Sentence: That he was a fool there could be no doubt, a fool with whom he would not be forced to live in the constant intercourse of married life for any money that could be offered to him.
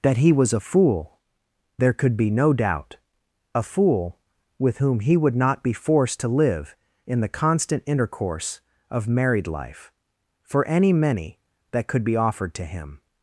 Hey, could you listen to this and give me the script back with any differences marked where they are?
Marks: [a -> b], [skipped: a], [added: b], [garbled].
That he was a fool there could be no doubt, a fool with whom he would not be forced to live in the constant intercourse of married life for any [money -> many] that could be offered to him.